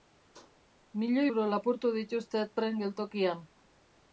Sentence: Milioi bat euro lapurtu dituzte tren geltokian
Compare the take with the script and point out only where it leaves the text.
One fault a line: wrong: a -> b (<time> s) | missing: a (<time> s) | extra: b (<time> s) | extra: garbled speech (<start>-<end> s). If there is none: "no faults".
missing: bat (1.3 s)